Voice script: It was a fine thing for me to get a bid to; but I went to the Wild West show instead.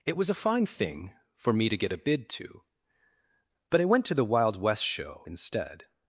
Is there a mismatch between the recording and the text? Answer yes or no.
no